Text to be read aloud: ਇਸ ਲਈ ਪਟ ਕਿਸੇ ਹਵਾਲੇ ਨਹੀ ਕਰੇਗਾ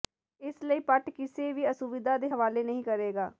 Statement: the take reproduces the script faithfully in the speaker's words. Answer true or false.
false